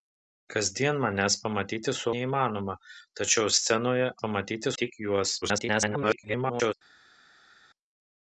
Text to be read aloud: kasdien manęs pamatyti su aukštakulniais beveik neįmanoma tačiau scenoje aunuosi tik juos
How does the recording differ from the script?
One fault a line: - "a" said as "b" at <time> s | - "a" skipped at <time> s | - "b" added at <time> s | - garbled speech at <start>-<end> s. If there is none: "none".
- "aukštakulniais beveik" skipped at 2.1 s
- "aunuosi" said as "pamatyti" at 4.2 s
- garbled speech at 5.4-6.7 s